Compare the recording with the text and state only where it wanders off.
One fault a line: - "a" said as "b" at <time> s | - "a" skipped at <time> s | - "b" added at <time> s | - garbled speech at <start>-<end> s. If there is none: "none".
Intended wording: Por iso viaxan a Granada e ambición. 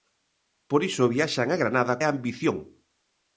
none